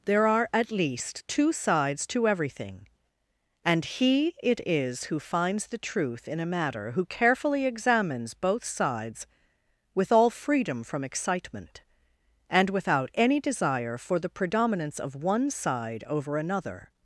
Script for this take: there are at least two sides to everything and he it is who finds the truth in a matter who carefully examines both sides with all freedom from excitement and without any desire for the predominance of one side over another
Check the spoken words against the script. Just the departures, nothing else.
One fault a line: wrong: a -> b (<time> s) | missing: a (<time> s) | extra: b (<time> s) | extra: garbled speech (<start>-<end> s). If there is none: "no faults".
no faults